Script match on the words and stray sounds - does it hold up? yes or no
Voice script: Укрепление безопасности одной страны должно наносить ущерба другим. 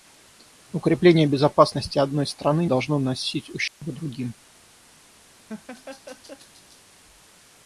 no